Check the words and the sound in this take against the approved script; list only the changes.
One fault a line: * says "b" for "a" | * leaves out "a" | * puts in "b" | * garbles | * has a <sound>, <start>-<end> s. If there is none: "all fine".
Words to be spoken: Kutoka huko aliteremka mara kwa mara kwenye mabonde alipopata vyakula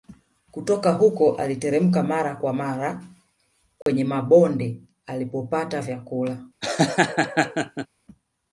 * has a dropout, 3.8-3.9 s
* has a laugh, 6.6-7.9 s